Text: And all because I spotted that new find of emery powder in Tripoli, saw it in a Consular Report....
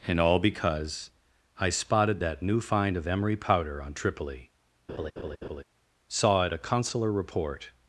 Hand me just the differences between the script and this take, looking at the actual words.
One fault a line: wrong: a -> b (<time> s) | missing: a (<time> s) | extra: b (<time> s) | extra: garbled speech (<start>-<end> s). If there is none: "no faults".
wrong: in -> on (3.8 s)
missing: in (6.5 s)